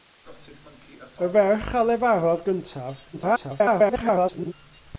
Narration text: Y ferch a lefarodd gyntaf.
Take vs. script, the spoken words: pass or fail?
fail